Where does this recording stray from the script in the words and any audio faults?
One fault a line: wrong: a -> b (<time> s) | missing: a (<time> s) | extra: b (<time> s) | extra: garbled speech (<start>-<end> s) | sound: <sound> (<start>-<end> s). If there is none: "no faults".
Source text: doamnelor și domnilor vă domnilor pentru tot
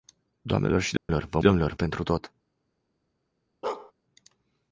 sound: dropout (1.0-1.1 s)
sound: bark (3.6-3.9 s)